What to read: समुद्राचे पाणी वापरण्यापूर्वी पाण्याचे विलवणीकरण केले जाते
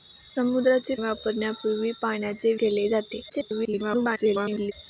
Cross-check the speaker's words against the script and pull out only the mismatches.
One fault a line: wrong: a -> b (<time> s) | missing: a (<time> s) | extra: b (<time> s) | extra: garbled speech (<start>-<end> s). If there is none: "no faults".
missing: पाणी (0.9 s)
missing: विलवणीकरण (2.5 s)
extra: garbled speech (3.3-4.7 s)